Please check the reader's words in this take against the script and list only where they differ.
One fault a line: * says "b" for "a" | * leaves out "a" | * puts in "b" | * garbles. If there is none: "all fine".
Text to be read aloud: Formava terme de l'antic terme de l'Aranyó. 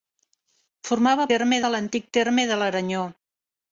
all fine